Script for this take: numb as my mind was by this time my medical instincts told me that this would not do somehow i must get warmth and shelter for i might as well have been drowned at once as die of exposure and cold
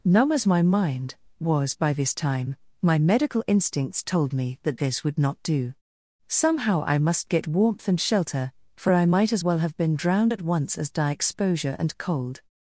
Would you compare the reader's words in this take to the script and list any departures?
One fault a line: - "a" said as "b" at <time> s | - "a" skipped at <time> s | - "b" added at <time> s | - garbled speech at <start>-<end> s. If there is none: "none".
- "of" skipped at 11.1 s